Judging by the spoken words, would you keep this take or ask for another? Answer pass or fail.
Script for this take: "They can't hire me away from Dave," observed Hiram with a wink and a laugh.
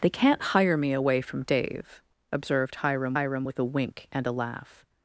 fail